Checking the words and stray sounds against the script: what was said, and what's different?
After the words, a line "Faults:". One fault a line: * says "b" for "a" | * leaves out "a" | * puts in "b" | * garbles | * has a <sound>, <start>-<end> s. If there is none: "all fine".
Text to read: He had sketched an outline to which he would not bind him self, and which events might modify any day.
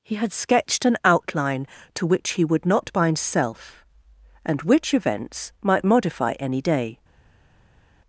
He had sketched an outline to which he would not bind self, and which events might modify any day.
Faults:
* leaves out "him"